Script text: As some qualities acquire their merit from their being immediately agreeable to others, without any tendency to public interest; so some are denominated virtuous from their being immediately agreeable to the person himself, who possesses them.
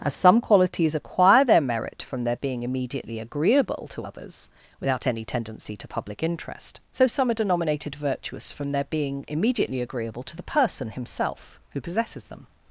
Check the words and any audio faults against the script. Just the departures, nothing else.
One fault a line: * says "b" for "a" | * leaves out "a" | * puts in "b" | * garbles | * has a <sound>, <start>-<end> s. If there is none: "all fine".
all fine